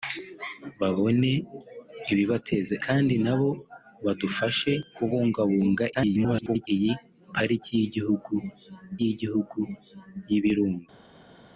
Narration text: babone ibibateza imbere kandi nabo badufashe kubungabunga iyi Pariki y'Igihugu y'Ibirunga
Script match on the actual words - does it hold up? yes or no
no